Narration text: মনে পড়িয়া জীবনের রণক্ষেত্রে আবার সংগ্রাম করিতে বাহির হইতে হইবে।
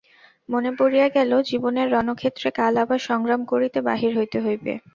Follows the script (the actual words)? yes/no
no